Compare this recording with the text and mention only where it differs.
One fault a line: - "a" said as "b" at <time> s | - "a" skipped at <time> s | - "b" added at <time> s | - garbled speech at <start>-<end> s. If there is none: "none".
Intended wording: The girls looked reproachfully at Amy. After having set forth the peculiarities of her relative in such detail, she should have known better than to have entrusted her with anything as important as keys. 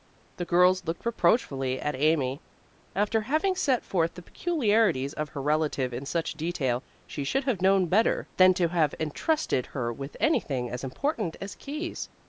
none